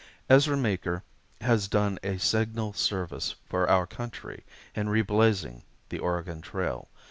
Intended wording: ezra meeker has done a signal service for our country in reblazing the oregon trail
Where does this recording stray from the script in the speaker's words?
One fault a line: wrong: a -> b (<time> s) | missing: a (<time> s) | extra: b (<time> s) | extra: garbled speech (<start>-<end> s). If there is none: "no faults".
no faults